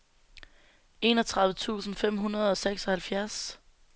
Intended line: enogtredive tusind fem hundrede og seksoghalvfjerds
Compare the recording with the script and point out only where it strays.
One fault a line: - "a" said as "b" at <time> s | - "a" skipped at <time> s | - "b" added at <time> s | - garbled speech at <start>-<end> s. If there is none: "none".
none